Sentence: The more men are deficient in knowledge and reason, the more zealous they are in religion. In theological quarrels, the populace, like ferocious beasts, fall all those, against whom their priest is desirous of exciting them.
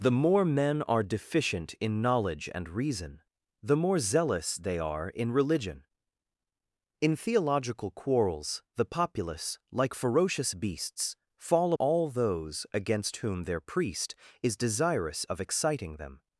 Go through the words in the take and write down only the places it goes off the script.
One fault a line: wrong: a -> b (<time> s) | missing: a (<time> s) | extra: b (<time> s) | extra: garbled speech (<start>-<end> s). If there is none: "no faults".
no faults